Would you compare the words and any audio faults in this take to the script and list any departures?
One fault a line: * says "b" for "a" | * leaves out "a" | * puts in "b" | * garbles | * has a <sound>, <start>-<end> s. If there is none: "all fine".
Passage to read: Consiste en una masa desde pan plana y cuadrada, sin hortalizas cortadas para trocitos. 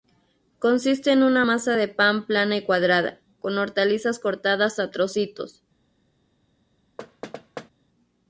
* says "de" for "desde"
* says "con" for "sin"
* says "a" for "para"
* has a thud, 7.0-7.7 s